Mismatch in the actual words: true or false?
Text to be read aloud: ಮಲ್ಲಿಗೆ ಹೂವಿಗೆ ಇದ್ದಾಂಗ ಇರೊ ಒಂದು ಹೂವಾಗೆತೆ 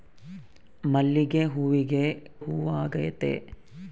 true